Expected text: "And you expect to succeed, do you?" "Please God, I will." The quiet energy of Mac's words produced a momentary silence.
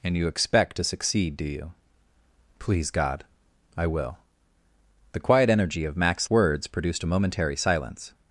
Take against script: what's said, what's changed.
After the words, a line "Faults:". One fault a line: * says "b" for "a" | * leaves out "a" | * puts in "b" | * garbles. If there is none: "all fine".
"And you expect to succeed, do you?" "Please God, I will." The quiet energy of Mac's words produced a momentary silence.
Faults:
all fine